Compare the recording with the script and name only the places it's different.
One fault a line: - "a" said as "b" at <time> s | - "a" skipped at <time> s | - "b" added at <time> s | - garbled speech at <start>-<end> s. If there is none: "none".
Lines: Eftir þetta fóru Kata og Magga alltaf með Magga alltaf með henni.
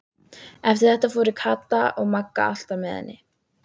- "Magga alltaf með" skipped at 3.0 s